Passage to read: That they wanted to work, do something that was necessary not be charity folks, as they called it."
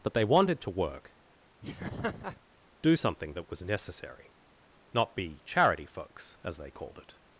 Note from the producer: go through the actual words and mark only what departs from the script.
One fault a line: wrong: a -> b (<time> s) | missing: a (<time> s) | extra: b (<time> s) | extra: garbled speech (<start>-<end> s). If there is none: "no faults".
no faults